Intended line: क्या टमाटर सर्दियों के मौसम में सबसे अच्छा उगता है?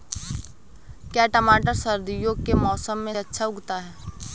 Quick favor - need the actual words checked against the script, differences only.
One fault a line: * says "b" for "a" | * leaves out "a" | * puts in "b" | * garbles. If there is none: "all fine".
* leaves out "सबसे"